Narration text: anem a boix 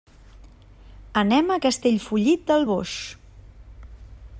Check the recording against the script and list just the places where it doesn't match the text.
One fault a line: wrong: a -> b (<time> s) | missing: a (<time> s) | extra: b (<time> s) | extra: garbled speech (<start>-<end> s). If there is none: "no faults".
extra: castellfollit del (1.6 s)